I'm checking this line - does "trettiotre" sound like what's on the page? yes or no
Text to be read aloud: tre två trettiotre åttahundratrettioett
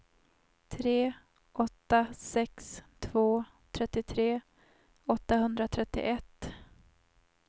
yes